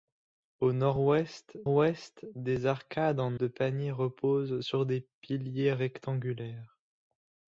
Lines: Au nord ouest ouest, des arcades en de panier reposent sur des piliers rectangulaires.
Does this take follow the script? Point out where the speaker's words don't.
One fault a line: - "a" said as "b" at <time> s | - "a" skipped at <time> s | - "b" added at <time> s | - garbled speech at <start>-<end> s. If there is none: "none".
none